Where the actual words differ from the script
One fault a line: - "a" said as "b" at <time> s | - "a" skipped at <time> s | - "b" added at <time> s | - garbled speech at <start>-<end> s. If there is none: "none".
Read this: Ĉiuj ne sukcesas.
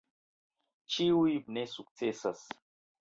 none